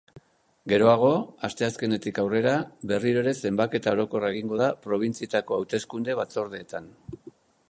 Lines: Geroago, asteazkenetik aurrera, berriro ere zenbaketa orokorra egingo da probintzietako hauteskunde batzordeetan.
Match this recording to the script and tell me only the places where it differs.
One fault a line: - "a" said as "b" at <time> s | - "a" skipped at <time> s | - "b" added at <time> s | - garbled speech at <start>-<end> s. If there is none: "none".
none